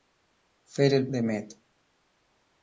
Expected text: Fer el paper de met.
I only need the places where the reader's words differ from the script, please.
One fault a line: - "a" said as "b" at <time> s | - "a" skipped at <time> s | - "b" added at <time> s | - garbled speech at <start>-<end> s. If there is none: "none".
- "paper" skipped at 1.1 s